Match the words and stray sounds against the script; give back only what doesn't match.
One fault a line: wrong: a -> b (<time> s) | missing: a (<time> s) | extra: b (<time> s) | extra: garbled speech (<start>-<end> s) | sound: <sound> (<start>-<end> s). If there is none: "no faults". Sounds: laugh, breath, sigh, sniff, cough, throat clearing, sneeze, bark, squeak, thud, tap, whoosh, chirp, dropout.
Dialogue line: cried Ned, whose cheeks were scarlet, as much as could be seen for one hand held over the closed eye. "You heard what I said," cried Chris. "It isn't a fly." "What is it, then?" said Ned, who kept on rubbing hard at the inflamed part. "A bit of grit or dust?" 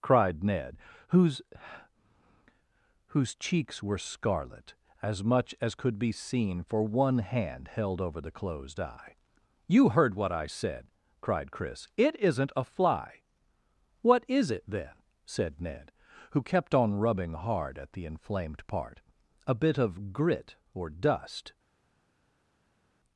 extra: whose (3.1 s)